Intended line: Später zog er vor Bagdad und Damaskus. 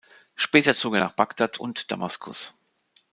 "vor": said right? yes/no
no